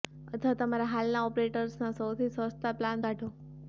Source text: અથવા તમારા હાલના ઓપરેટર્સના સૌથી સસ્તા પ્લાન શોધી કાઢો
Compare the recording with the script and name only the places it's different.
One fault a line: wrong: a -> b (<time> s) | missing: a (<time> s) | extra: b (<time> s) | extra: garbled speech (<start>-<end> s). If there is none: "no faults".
missing: શોધી (3.0 s)